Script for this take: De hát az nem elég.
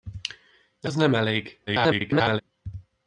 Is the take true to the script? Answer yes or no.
no